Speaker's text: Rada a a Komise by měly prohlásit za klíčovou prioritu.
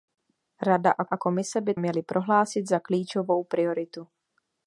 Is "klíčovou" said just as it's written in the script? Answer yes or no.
yes